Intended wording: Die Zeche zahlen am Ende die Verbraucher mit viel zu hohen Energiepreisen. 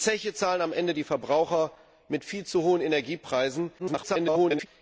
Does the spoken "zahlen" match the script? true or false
true